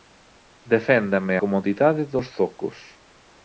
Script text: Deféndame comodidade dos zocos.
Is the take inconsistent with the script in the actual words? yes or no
no